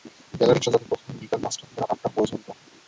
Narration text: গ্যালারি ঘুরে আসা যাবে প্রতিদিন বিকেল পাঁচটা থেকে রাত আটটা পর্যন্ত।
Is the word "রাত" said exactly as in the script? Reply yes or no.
yes